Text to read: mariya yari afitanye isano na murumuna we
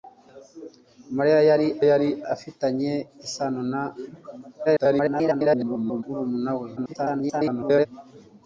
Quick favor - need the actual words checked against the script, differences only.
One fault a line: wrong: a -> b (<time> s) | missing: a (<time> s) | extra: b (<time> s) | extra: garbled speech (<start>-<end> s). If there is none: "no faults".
extra: yari (1.9 s)
extra: garbled speech (4.6-6.0 s)
extra: garbled speech (6.8-7.9 s)